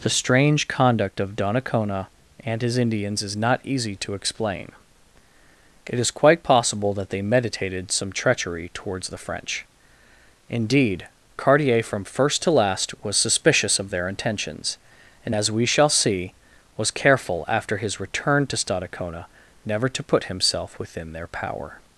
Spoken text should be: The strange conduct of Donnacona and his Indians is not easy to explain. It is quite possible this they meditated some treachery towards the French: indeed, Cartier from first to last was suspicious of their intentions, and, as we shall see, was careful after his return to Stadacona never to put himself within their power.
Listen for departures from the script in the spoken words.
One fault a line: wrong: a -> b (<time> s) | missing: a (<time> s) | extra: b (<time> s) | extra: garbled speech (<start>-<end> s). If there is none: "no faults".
wrong: this -> that (7.0 s)